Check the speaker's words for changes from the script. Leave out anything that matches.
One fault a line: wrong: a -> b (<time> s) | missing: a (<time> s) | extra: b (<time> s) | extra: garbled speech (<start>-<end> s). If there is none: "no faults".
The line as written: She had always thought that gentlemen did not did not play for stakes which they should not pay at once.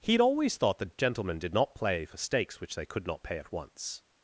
wrong: She -> He (0.0 s)
missing: did not (1.8 s)
wrong: should -> could (2.9 s)